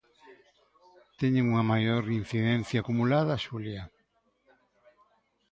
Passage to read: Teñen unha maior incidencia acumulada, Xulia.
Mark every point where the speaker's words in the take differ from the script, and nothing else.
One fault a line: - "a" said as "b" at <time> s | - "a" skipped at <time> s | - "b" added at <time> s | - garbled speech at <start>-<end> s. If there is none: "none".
none